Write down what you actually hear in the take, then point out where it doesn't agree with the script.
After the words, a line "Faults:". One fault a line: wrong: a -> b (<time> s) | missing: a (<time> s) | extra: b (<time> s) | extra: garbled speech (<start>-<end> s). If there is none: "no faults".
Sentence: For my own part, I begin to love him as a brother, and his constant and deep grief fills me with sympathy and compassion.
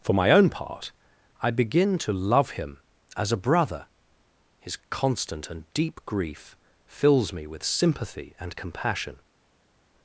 For my own part, I begin to love him as a brother, his constant and deep grief fills me with sympathy and compassion.
Faults:
missing: and (3.9 s)